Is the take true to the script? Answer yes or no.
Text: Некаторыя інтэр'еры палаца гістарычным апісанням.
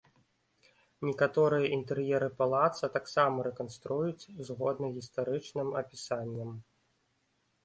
no